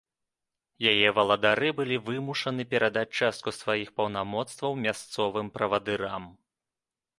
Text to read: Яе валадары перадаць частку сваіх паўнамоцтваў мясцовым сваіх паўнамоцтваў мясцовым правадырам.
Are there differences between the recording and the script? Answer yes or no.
yes